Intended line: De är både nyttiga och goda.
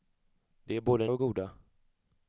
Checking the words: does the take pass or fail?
fail